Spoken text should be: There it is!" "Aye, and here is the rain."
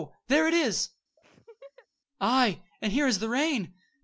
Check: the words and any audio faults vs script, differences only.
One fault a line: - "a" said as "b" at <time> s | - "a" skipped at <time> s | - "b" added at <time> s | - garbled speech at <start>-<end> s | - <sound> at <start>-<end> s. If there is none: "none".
- laugh at 1.2-1.9 s